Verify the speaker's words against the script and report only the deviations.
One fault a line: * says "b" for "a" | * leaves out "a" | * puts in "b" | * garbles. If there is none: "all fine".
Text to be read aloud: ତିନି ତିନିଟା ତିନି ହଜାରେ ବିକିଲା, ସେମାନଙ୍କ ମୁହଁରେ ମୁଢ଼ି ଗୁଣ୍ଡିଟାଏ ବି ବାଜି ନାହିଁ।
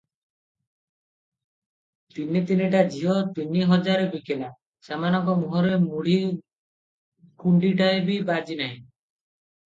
* puts in "ଝିଅ"